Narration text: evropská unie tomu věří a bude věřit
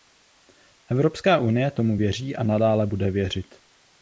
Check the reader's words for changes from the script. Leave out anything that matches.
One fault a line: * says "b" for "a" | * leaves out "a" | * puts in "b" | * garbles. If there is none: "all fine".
* puts in "nadále"